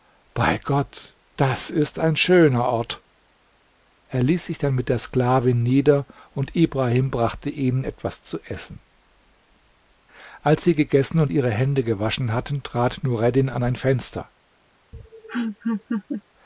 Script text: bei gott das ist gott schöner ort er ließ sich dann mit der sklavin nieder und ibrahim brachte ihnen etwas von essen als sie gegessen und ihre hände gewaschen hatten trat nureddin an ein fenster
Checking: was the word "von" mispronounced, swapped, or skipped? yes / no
yes